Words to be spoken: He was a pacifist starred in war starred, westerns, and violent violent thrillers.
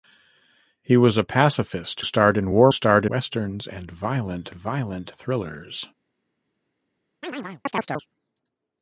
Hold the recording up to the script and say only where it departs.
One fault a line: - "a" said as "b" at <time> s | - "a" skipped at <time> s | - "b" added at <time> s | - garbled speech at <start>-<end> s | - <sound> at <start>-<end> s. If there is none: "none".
- chirp at 7.2-8.1 s